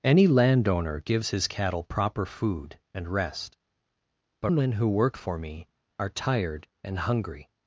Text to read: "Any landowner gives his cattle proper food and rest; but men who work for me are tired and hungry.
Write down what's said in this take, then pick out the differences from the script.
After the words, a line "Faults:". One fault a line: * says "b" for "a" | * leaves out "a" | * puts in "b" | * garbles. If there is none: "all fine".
"Any landowner gives his cattle proper food and rest; but men who work for me are tired and hungry.
Faults:
all fine